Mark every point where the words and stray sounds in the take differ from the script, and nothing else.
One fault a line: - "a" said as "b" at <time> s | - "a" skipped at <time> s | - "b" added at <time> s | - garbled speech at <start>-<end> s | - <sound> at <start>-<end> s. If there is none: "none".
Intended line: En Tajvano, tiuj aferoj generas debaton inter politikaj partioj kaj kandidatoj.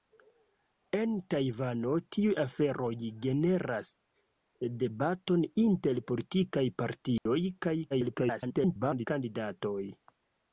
- dropout at 7.2-7.3 s
- garbled speech at 7.9-9.1 s